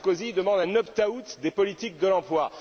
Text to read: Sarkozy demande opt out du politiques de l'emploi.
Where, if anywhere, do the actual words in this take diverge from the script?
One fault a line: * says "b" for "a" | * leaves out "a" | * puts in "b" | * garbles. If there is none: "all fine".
* puts in "un"
* says "des" for "du"